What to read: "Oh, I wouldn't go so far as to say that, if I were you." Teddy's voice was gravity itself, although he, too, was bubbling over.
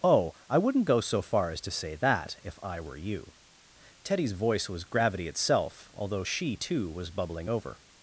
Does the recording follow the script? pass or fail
fail